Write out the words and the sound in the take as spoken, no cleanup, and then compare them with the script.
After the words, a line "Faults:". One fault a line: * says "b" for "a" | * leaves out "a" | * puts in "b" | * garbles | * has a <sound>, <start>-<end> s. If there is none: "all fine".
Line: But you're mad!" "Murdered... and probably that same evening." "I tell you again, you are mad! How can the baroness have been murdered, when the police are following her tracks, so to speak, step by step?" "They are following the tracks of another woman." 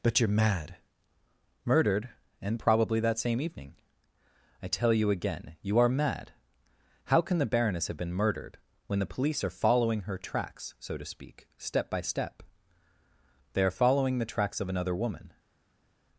But you're mad!" "Murdered... and probably that same evening." "I tell you again, you are mad! How can the baroness have been murdered, when the police are following her tracks, so to speak, step by step?" "They are following the tracks of another woman."
Faults:
all fine